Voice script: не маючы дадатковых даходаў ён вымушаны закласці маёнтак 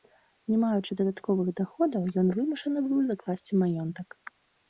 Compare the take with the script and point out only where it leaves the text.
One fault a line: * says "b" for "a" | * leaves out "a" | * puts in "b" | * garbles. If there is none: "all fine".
* puts in "быў"